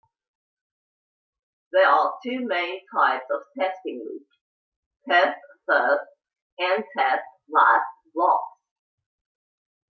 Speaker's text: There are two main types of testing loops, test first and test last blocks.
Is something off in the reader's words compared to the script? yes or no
no